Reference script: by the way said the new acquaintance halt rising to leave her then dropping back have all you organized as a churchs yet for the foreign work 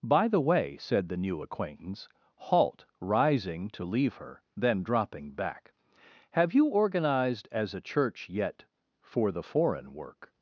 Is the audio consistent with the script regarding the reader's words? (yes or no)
no